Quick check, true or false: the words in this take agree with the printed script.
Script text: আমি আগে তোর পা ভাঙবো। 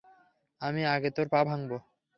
true